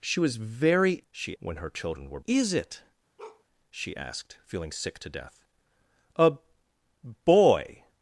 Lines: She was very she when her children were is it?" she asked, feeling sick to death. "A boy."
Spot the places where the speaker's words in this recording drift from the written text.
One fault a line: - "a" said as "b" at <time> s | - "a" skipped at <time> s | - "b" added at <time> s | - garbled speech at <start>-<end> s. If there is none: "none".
none